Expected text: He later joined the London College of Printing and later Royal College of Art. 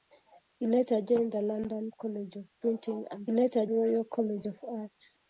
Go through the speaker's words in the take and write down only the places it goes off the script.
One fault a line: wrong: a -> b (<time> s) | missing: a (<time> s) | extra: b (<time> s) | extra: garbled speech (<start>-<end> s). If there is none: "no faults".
no faults